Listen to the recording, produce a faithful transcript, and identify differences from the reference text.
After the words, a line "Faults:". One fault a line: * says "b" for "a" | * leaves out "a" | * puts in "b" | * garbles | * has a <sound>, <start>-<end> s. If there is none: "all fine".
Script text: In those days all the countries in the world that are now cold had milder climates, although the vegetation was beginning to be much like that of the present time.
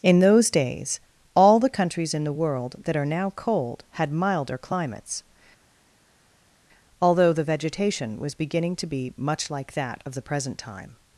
In those days all the countries in the world that are now cold had milder climates, although the vegetation was beginning to be much like that of the present time.
Faults:
all fine